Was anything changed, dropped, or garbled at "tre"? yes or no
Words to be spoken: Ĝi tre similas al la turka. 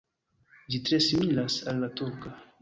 no